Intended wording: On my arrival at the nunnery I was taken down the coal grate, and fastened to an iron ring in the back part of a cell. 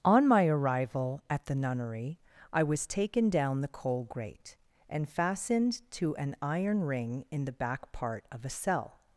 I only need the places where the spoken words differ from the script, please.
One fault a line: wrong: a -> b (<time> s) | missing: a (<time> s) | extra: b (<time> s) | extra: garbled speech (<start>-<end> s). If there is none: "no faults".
no faults